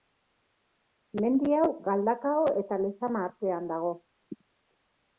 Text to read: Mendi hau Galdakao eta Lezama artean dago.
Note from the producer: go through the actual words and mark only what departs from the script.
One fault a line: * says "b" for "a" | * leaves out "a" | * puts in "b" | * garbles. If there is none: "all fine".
all fine